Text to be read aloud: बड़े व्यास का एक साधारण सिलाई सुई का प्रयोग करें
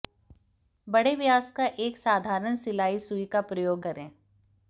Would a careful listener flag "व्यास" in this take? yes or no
no